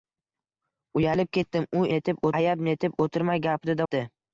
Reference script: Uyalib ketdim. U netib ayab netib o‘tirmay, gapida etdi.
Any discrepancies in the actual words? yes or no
no